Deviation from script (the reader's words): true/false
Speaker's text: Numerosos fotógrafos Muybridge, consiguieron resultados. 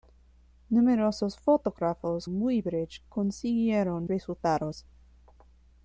false